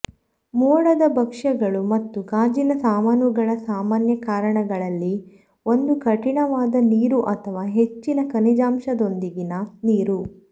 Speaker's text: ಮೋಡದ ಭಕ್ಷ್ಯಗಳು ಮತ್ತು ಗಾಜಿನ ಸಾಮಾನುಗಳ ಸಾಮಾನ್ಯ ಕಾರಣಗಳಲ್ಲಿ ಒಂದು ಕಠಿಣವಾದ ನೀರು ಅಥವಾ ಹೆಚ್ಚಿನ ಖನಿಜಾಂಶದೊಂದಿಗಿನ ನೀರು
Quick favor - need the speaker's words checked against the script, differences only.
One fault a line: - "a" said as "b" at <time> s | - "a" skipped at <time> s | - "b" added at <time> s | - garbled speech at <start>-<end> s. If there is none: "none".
none